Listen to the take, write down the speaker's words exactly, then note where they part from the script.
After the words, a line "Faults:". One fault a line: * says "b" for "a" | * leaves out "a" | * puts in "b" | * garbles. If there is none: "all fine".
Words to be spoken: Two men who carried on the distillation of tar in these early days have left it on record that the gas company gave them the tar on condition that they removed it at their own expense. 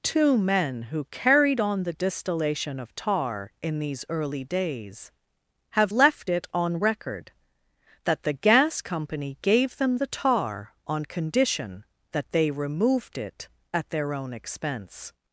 Two men who carried on the distillation of tar in these early days have left it on record that the gas company gave them the tar on condition that they removed it at their own expense.
Faults:
all fine